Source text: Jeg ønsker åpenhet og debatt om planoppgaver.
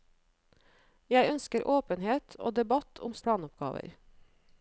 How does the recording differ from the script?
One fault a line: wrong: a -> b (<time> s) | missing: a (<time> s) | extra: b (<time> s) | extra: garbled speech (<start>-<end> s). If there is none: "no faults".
no faults